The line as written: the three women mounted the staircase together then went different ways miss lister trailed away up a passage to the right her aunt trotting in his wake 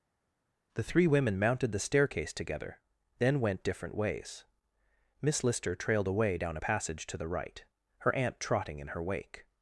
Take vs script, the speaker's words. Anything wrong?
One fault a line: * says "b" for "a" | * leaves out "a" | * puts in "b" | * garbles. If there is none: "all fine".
* says "down" for "up"
* says "her" for "his"